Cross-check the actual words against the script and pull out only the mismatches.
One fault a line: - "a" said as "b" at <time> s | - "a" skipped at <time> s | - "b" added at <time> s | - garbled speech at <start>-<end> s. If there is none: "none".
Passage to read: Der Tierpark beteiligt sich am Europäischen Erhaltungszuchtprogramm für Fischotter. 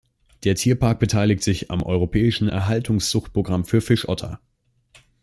none